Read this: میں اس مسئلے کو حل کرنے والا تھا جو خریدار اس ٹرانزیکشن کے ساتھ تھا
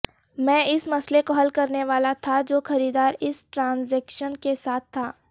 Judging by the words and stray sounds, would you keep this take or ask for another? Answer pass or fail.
pass